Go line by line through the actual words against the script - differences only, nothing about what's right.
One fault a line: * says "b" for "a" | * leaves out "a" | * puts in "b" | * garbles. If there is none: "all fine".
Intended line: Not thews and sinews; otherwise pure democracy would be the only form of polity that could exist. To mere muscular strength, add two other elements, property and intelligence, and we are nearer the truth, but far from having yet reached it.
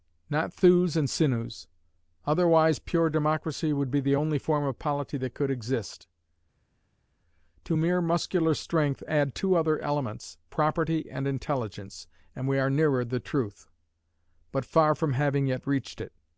all fine